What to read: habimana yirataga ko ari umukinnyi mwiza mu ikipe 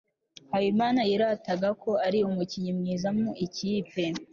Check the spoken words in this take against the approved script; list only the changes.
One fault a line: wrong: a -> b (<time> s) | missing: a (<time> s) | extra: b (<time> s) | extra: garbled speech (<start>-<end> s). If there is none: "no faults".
no faults